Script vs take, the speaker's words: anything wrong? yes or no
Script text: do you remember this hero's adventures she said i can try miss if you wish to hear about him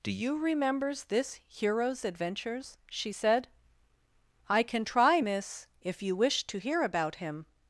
yes